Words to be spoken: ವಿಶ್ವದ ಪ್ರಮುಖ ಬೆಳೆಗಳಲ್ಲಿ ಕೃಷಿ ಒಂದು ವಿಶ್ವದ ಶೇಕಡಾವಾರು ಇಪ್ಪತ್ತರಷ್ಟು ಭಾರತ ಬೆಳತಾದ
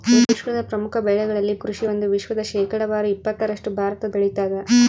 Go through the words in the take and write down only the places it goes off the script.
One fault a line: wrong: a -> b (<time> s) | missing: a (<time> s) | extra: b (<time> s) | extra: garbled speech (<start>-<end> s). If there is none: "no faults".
no faults